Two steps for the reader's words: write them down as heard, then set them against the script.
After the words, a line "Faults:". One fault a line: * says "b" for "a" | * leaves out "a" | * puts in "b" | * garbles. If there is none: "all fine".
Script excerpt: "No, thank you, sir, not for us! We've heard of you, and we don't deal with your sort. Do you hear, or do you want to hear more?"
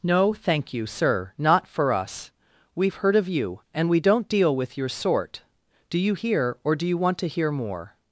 "No, thank you, sir, not for us! We've heard of you, and we don't deal with your sort. Do you hear, or do you want to hear more?"
Faults:
all fine